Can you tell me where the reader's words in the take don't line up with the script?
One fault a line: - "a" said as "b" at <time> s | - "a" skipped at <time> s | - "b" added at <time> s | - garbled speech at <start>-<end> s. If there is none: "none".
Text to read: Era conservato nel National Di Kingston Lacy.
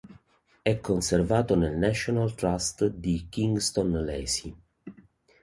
- "Era" said as "È" at 0.6 s
- "Trust" added at 2.3 s